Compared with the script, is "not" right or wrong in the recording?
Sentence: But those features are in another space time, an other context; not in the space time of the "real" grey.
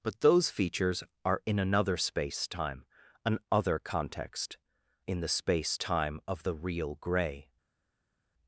wrong